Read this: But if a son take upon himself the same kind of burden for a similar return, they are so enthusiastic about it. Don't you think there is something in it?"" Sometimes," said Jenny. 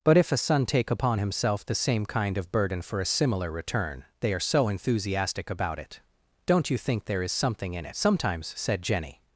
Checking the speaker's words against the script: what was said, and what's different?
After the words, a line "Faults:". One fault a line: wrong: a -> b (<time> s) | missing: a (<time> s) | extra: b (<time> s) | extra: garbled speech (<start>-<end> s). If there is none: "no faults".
But if a son take upon himself the same kind of burden for a similar return, they are so enthusiastic about it. Don't you think there is something in it?"" Sometimes," said Jenny.
Faults:
no faults